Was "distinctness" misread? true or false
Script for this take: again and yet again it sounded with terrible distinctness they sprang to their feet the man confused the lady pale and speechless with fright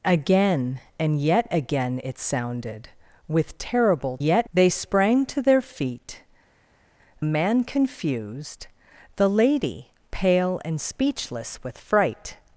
true